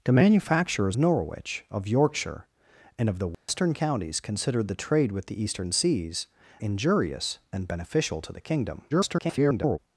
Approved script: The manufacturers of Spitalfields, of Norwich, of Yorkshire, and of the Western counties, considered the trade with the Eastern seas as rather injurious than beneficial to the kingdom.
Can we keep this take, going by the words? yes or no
no